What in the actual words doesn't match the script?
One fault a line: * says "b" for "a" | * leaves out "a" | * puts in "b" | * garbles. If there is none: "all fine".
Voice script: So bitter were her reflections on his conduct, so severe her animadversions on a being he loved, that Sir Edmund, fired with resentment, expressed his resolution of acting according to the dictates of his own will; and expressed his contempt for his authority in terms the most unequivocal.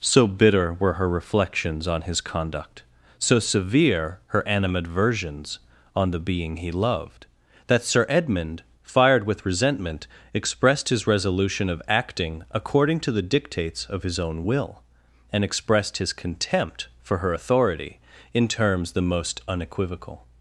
* says "the" for "a"
* says "her" for "his"